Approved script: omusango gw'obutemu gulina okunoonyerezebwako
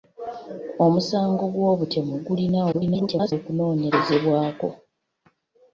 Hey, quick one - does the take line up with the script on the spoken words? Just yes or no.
no